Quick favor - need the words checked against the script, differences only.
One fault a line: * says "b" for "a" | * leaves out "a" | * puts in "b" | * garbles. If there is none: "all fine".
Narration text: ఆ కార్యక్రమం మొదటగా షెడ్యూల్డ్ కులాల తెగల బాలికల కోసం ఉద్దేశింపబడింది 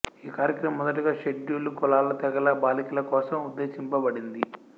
* says "ఈ" for "ఆ"